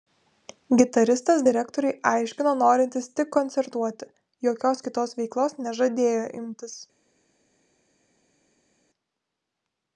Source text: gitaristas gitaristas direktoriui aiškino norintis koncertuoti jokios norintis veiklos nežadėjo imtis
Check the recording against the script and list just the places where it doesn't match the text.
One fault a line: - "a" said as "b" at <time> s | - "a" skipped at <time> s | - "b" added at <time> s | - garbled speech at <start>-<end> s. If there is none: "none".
- "gitaristas" skipped at 1.4 s
- "tik" added at 3.2 s
- "norintis" said as "kitos" at 4.9 s